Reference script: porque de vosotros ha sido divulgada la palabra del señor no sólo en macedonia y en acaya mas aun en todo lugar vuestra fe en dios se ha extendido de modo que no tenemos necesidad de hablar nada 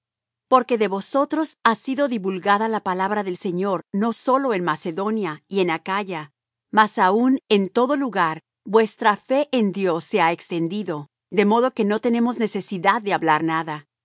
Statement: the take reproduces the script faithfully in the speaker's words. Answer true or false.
true